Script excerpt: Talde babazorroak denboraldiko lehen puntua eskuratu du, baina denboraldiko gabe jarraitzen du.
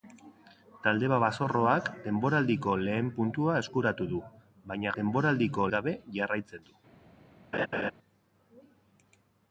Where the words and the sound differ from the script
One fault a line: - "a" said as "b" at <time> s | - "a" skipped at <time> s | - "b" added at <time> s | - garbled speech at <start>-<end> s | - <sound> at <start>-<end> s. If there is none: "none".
- laugh at 7.5-7.9 s